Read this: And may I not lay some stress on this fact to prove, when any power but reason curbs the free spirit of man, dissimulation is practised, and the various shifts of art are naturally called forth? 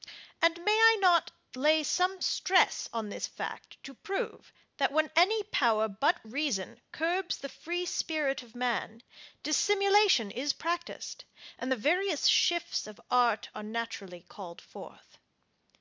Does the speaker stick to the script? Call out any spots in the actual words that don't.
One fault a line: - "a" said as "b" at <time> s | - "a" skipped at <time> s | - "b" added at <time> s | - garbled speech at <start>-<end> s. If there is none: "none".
- "that" added at 4.8 s